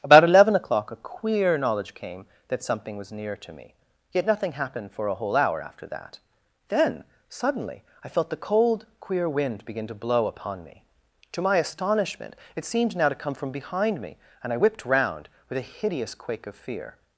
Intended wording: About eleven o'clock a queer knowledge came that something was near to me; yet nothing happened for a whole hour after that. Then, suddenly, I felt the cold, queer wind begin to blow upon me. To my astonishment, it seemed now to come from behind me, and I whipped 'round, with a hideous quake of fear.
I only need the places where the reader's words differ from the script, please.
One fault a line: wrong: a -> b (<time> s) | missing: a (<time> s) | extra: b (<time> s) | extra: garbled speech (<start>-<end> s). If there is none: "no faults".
no faults